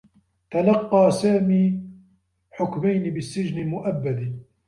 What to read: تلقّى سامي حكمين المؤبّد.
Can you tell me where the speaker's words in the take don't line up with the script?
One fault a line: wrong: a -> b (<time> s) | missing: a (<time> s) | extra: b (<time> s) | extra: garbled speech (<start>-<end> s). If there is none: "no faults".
extra: بالسّجن (3.1 s)